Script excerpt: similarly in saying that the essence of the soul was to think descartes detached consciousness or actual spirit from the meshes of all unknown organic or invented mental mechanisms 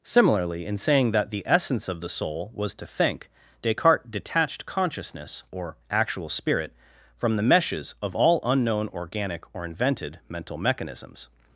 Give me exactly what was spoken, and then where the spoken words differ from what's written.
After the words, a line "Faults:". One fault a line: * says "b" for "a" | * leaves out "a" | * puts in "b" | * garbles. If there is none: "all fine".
similarly in saying that the essence of the soul was to think descartes detached consciousness or actual spirit from the meshes of all unknown organic or invented mental mechanisms
Faults:
all fine